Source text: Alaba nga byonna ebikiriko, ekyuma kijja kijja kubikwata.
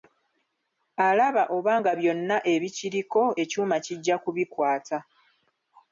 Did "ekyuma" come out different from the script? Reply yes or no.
no